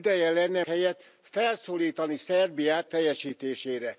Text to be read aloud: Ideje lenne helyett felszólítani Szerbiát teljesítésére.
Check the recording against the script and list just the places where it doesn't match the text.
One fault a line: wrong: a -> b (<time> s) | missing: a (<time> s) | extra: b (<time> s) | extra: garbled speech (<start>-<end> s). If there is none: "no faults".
no faults